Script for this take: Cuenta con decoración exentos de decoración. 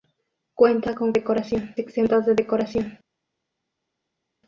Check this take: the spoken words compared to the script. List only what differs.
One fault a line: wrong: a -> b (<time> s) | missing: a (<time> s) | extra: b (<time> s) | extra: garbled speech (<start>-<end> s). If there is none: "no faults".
no faults